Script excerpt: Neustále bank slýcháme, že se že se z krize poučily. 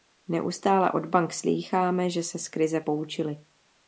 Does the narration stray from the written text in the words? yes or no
yes